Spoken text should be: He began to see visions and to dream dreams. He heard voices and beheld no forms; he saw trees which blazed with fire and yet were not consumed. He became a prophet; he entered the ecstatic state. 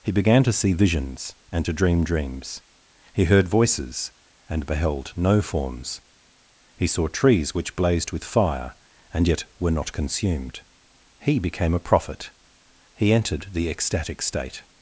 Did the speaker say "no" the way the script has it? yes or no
yes